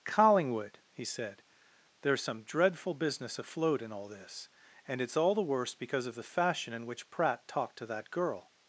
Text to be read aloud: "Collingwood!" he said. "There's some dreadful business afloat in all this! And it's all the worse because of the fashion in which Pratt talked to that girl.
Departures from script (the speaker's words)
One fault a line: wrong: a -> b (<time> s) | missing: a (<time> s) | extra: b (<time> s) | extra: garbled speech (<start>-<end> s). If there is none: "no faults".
no faults